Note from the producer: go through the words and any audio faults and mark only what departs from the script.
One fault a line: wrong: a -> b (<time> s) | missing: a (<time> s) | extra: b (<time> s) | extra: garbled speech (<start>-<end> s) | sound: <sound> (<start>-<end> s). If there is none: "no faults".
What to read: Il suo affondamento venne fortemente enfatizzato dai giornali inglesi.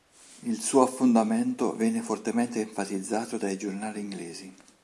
no faults